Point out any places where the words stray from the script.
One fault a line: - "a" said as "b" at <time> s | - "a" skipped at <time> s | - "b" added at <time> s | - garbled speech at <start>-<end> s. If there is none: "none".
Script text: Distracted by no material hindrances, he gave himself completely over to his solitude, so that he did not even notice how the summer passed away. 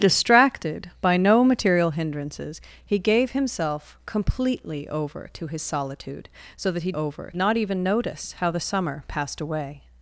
- "did" said as "over" at 6.9 s